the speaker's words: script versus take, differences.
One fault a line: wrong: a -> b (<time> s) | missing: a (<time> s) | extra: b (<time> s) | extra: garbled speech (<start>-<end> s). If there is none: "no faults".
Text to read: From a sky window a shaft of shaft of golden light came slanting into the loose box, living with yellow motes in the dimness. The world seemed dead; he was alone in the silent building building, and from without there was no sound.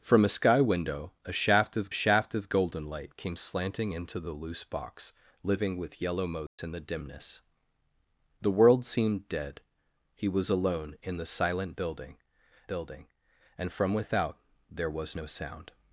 no faults